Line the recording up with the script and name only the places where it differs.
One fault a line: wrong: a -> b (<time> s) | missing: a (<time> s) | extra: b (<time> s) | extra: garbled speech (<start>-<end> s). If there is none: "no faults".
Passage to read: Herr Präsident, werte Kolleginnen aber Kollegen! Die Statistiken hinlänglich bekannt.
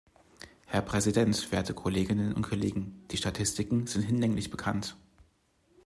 wrong: aber -> und (2.3 s)
extra: sind (3.9 s)